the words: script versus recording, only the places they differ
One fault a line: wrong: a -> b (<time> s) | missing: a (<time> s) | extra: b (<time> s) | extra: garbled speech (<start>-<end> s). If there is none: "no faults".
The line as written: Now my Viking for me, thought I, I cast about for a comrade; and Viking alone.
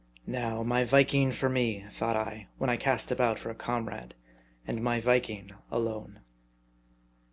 extra: when (2.6 s)
extra: my (4.8 s)